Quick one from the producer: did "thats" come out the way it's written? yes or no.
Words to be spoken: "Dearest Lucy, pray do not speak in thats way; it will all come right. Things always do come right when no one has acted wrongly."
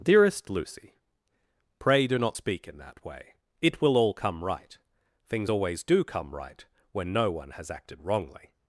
no